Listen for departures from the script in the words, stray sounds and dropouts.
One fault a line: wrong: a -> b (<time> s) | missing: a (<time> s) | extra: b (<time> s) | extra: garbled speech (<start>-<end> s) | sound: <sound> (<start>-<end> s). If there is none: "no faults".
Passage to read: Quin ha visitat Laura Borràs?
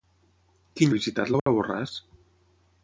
sound: dropout (1.4-1.5 s)